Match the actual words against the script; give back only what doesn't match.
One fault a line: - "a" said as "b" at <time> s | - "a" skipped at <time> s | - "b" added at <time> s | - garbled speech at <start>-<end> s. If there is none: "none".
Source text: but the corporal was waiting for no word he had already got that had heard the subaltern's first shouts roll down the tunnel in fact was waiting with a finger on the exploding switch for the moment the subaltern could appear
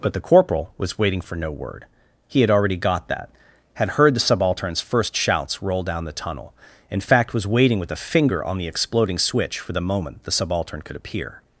none